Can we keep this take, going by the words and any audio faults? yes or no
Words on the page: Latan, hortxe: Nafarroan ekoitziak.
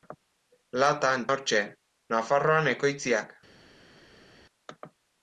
yes